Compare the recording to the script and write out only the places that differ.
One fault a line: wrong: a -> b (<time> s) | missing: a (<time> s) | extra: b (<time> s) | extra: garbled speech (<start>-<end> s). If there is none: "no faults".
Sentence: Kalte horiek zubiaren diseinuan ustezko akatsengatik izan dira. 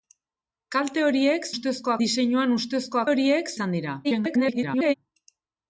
wrong: zubiaren -> ustezko (1.5 s)
wrong: akatsengatik -> horiek (3.1 s)
extra: garbled speech (4.0-4.9 s)